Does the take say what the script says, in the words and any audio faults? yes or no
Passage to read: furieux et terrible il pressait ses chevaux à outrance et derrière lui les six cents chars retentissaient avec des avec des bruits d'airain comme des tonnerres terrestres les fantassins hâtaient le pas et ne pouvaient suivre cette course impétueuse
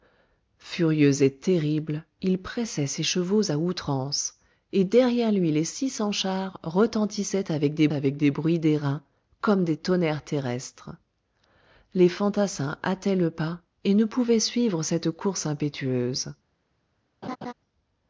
no